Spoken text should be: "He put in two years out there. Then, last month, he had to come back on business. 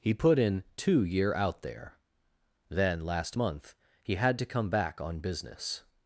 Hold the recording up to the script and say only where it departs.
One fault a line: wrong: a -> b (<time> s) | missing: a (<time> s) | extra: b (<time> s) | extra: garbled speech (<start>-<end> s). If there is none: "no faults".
wrong: years -> year (1.0 s)